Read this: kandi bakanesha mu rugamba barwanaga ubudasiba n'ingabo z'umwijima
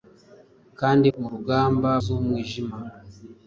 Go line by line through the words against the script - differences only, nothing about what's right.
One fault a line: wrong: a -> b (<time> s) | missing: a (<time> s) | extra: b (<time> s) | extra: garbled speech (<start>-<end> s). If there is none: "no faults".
missing: bakanesha (1.1 s)
missing: barwanaga ubudasiba n'ingabo (1.9 s)